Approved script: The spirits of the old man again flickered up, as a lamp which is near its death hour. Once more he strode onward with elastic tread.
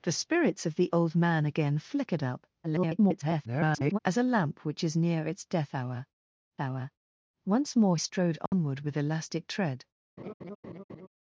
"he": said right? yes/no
no